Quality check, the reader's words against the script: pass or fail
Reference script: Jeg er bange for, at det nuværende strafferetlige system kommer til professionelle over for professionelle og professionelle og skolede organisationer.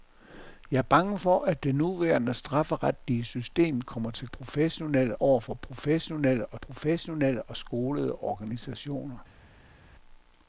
pass